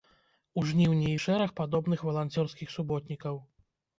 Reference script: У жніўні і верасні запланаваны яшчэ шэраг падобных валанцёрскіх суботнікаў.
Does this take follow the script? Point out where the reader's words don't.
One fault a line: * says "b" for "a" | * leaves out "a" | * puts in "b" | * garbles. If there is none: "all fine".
* leaves out "верасні запланаваны яшчэ"